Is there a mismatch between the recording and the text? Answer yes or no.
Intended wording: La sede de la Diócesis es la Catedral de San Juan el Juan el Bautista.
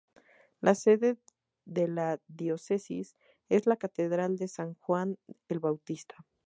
yes